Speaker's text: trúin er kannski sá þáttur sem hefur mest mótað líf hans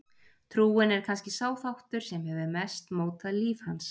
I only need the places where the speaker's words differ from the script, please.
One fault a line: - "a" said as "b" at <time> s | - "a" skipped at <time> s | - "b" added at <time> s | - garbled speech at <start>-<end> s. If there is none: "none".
none